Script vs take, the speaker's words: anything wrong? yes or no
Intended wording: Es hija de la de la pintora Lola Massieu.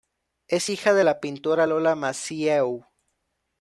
yes